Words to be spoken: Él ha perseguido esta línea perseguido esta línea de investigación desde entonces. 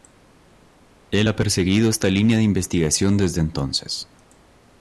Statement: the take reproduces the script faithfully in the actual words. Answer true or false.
false